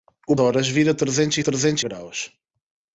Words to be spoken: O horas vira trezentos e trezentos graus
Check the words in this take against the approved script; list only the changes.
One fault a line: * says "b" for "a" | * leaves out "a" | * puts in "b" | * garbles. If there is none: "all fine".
all fine